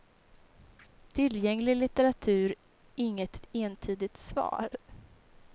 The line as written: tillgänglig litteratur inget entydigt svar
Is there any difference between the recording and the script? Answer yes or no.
no